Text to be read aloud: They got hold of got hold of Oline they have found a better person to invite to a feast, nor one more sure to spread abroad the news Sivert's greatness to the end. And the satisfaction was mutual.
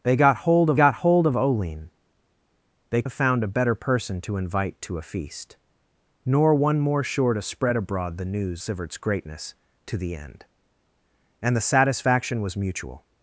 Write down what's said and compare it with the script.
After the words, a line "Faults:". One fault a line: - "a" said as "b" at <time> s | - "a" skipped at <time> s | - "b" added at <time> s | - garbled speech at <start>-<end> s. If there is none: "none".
They got hold of got hold of Oline they have found a better person to invite to a feast, nor one more sure to spread abroad the news Sivert's greatness to the end. And the satisfaction was mutual.
Faults:
none